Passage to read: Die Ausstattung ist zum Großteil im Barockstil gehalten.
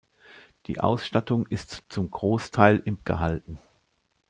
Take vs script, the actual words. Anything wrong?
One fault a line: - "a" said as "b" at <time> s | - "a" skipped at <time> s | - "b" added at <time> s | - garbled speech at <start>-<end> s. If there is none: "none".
- "Barockstil" skipped at 3.0 s